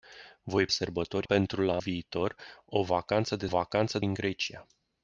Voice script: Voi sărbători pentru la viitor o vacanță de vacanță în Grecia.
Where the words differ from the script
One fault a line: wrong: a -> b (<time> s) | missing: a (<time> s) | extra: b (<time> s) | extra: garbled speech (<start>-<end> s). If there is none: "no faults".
no faults